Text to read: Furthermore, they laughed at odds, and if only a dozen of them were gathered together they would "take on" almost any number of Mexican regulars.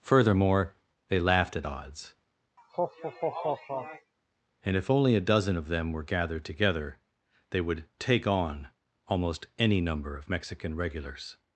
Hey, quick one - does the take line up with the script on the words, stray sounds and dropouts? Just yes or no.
no